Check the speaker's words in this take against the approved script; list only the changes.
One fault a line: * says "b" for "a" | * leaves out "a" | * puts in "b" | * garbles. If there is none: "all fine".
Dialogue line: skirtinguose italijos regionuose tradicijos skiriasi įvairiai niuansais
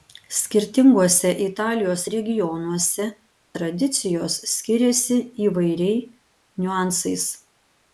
all fine